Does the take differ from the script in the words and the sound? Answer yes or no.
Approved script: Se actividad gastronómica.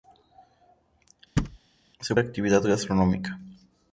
yes